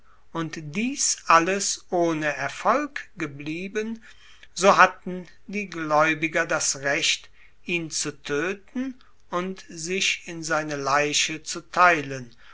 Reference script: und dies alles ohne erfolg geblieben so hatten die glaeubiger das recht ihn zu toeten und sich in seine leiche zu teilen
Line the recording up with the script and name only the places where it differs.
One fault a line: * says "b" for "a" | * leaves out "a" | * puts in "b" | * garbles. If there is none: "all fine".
all fine